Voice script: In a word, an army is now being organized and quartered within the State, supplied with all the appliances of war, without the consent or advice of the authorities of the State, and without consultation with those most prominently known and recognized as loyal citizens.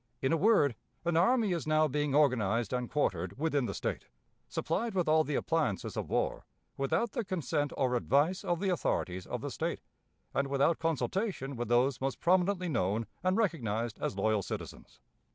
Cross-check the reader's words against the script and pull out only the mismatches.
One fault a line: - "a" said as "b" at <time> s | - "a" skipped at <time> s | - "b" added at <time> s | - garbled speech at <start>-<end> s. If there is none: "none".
none